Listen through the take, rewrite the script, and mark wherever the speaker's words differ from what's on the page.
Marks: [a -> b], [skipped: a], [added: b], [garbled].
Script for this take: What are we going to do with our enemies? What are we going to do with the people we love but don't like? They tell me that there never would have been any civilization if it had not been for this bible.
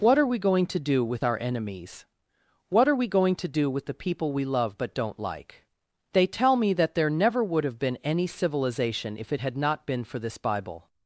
What are we going to do with our enemies? What are we going to do with the people we love but don't like? They tell me that there never would have been any civilization if it had not been for this bible.